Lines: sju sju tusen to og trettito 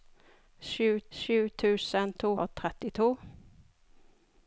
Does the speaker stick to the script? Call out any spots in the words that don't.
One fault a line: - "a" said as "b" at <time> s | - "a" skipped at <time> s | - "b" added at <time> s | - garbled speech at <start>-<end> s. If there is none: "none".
none